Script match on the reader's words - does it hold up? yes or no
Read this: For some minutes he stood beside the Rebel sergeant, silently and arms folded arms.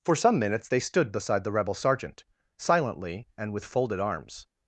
no